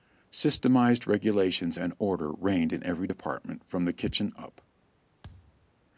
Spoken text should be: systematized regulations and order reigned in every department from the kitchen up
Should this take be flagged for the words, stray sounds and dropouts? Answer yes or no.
yes